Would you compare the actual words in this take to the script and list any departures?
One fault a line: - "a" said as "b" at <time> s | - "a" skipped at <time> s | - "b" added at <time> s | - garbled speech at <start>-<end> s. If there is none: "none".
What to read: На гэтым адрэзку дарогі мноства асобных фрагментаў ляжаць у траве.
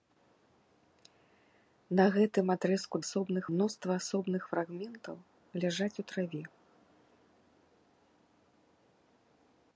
- "дарогі" said as "асобных" at 3.1 s